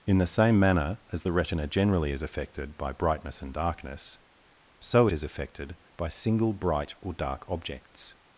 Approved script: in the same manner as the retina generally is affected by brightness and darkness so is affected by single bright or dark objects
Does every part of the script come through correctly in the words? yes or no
yes